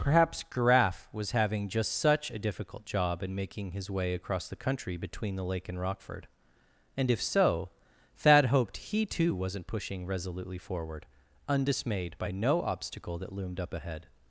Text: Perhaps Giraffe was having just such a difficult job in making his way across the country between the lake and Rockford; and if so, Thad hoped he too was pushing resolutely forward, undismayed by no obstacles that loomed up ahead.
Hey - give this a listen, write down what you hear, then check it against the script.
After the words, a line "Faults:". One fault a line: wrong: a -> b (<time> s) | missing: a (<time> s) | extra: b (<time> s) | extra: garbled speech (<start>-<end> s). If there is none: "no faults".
Perhaps Giraffe was having just such a difficult job in making his way across the country between the lake and Rockford; and if so, Thad hoped he too wasn't pushing resolutely forward, undismayed by no obstacle that loomed up ahead.
Faults:
wrong: was -> wasn't (9.3 s)
wrong: obstacles -> obstacle (12.6 s)